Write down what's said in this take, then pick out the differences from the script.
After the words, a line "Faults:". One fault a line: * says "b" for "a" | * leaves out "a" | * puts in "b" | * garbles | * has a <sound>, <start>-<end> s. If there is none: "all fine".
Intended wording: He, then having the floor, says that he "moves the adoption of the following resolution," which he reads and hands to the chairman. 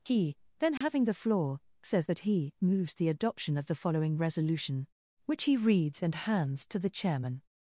He, then having the floor, says that he "moves the adoption of the following resolution," which he reads and hands to the chairman.
Faults:
* has a dropout, 0.8-0.8 s